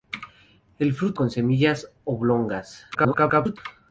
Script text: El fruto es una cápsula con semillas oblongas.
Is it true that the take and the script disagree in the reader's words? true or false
true